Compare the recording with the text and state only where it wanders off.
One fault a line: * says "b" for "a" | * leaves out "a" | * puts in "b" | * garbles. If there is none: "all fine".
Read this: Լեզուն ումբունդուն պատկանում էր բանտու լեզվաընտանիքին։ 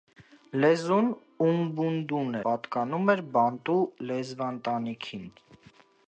all fine